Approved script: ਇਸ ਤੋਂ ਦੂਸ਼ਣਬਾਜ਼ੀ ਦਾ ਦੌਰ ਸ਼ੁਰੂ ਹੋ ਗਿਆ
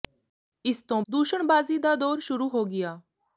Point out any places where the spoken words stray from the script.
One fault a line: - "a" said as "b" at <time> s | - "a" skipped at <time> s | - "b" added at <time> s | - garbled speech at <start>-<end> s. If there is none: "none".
none